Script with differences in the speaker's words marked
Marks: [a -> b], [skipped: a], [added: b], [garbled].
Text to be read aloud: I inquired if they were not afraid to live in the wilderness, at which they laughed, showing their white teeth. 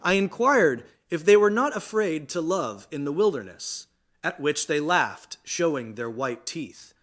I inquired if they were not afraid to [live -> love] in the wilderness, at which they laughed, showing their white teeth.